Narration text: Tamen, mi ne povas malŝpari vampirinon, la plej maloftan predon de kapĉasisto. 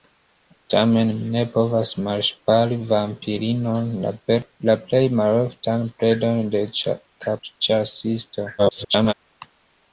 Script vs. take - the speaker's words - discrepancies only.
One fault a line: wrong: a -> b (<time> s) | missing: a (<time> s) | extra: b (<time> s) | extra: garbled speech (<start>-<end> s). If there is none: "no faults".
extra: garbled speech (8.6-9.1 s)